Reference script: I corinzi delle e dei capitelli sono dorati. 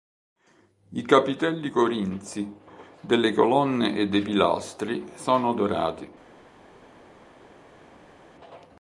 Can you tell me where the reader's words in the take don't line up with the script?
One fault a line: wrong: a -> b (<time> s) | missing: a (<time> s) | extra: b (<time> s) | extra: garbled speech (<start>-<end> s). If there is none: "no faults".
extra: capitelli (1.0 s)
extra: colonne (3.3 s)
wrong: capitelli -> pilastri (4.2 s)